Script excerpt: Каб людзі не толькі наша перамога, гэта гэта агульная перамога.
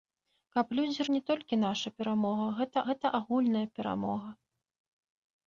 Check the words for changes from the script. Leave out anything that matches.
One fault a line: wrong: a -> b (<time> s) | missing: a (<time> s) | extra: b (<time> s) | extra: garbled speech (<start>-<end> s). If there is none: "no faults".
no faults